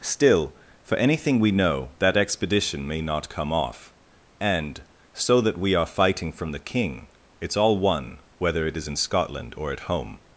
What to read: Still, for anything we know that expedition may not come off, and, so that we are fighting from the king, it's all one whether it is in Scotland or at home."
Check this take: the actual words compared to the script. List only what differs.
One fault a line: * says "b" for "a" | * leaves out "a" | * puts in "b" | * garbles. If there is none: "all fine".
all fine